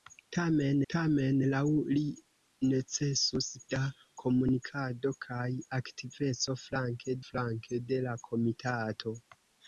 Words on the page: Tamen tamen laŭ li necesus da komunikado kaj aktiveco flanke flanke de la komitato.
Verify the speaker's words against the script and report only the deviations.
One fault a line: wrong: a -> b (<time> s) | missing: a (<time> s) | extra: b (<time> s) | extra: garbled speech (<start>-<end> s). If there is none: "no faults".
no faults